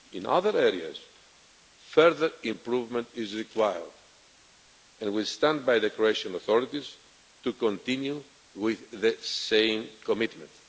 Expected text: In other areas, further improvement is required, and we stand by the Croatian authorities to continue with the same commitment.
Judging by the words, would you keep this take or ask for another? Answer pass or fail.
pass